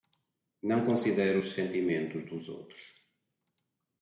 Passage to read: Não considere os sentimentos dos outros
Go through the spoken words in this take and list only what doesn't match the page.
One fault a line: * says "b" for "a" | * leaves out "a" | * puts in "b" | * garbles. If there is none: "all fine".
all fine